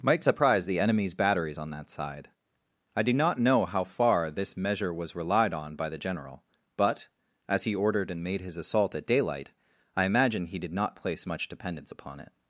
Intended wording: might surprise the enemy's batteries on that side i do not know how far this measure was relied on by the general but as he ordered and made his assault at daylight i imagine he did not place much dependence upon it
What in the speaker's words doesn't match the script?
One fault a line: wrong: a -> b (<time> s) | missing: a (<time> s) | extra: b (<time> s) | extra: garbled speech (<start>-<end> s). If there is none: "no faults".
no faults